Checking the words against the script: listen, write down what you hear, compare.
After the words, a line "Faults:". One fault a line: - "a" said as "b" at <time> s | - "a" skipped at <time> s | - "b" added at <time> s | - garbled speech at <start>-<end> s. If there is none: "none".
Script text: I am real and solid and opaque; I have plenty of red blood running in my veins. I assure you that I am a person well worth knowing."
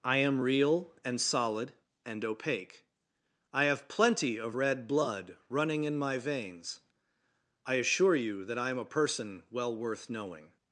I am real and solid and opaque; I have plenty of red blood running in my veins. I assure you that I am a person well worth knowing."
Faults:
none